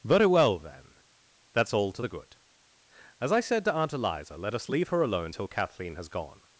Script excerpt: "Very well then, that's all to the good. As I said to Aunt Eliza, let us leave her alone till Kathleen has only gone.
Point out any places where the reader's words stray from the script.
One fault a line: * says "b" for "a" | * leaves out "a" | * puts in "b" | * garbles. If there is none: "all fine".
* leaves out "only"